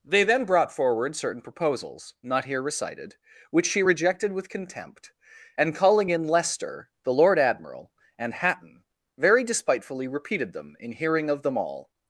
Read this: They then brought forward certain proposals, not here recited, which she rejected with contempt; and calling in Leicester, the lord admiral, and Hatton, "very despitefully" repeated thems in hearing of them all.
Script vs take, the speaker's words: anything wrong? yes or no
yes